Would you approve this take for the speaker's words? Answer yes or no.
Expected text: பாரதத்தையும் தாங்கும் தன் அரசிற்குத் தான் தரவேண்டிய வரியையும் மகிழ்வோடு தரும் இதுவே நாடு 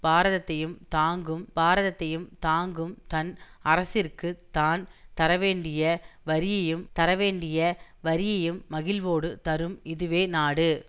no